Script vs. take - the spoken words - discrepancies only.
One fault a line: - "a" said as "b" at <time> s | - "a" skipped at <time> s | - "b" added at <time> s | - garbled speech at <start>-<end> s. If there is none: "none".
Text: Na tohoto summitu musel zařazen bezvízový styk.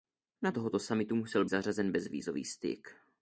none